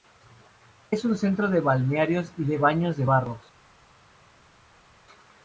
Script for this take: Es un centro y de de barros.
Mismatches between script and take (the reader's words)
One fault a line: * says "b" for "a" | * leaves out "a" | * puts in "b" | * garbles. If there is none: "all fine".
* puts in "de balnearios"
* puts in "baños"